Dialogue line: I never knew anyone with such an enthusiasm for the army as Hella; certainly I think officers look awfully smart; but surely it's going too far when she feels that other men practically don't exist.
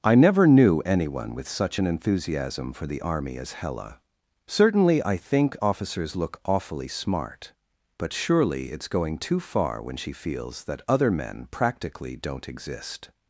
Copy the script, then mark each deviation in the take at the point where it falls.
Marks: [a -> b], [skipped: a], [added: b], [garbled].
I never knew anyone with such an enthusiasm for the army as Hella; certainly I think officers look awfully smart; but surely it's going too far when she feels that other men practically don't exist.